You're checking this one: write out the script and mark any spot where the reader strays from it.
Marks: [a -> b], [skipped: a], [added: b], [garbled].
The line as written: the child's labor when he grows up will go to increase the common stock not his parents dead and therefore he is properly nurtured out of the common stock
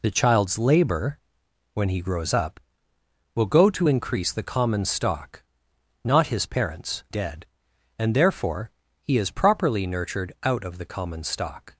the child's labor when he grows up will go to increase the common stock not his parents dead and therefore he is properly nurtured out of the common stock